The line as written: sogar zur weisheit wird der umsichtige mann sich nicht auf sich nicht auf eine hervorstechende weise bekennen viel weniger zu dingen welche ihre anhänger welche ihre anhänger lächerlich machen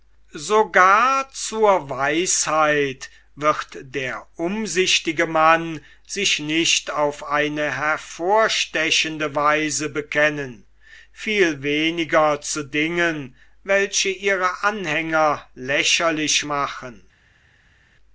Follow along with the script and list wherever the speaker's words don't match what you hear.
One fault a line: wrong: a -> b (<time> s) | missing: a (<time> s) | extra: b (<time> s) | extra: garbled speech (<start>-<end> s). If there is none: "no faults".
missing: sich nicht auf (7.2 s)
missing: welche ihre anhänger (15.5 s)